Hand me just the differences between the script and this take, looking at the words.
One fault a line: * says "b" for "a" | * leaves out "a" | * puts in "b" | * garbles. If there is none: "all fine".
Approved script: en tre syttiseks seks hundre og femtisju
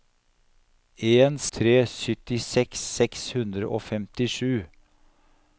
all fine